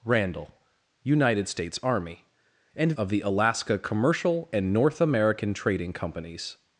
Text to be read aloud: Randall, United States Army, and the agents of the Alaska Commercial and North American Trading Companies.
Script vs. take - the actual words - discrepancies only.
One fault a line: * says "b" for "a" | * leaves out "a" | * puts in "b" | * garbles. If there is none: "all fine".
* leaves out "the agents"